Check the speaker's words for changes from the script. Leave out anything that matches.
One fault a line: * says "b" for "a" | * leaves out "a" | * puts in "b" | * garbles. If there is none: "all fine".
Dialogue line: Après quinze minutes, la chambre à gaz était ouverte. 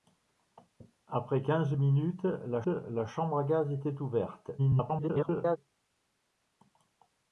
* puts in "la"
* garbles